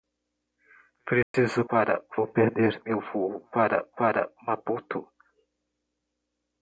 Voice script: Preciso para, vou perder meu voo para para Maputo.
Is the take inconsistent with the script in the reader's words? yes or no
no